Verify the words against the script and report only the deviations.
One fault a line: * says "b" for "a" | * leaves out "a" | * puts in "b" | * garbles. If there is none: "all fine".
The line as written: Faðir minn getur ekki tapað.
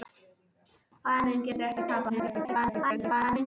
* garbles